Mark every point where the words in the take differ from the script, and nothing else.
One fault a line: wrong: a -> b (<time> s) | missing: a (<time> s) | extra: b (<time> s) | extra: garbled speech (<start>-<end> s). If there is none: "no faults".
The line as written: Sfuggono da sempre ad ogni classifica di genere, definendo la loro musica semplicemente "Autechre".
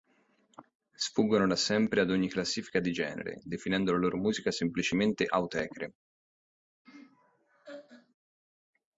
no faults